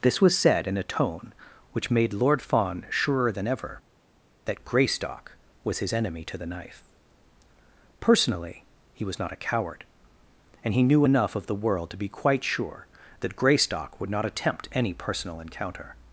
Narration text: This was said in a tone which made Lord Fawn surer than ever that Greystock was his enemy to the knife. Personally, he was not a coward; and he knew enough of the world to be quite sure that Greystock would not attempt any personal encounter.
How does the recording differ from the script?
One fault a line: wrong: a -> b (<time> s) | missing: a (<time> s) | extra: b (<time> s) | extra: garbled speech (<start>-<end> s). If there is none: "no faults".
no faults